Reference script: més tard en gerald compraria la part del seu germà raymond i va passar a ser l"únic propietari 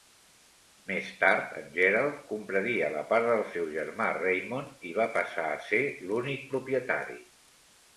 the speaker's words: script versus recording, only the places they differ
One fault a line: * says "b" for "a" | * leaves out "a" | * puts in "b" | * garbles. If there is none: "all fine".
all fine